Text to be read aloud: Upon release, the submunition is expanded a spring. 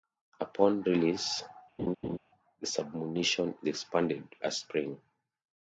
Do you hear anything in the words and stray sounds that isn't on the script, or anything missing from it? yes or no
yes